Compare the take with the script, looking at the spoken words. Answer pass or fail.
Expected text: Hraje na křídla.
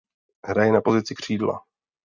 fail